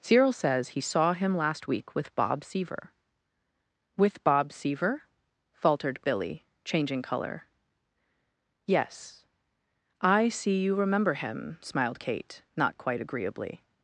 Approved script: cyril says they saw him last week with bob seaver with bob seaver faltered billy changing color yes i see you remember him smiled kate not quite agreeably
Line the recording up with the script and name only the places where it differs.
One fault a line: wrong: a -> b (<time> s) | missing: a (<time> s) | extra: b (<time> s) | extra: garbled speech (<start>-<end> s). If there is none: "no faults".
wrong: they -> he (0.7 s)